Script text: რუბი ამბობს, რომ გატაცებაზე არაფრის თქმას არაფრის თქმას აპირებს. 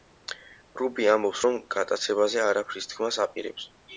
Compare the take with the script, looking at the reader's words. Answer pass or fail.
fail